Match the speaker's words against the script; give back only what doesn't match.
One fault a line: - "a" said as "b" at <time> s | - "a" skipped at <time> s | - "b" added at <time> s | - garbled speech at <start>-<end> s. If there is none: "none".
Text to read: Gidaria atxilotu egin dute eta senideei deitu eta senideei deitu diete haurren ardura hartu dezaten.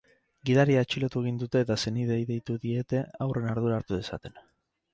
- "eta senideei deitu" skipped at 2.6 s